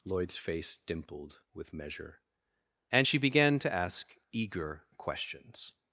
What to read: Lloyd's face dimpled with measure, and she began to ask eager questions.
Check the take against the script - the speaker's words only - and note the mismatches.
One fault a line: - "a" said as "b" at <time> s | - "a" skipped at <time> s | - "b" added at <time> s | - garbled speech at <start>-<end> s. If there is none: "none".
none